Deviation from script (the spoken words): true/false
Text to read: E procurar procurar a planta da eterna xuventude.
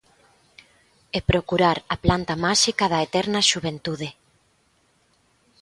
true